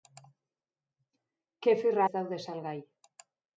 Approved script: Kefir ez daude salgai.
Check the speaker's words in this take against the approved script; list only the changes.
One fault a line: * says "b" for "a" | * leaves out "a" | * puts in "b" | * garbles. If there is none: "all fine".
all fine